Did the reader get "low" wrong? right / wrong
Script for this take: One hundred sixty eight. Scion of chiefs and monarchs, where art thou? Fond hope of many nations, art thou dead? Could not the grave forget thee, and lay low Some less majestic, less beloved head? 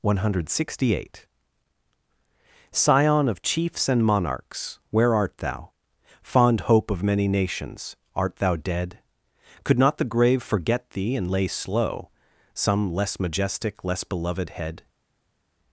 wrong